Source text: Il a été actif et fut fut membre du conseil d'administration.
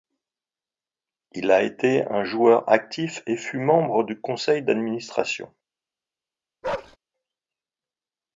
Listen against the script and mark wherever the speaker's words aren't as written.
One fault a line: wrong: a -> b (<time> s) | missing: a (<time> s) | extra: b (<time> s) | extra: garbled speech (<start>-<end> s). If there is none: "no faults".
extra: un joueur (2.1 s)
missing: fut (3.6 s)